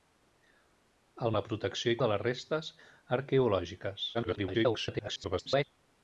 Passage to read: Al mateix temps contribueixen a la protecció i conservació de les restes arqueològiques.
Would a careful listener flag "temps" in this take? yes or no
yes